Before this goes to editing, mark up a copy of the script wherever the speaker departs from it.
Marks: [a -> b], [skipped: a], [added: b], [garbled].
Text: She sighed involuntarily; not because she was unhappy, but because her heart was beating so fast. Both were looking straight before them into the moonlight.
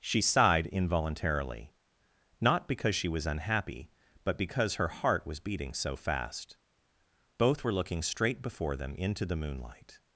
She sighed involuntarily; not because she was unhappy, but because her heart was beating so fast. Both were looking straight before them into the moonlight.